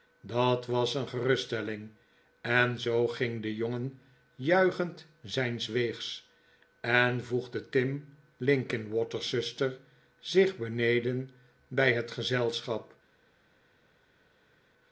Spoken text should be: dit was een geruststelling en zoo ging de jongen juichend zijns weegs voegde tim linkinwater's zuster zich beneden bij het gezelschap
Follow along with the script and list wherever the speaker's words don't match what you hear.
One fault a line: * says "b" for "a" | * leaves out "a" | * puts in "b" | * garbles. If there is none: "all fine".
* says "dat" for "dit"
* puts in "en"